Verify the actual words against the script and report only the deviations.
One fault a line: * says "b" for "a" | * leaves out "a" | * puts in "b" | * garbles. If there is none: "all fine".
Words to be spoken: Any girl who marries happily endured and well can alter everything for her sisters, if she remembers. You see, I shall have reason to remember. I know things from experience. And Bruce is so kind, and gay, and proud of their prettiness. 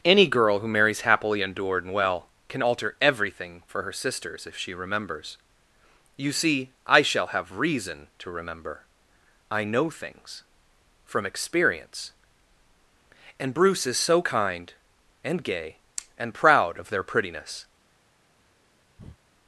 all fine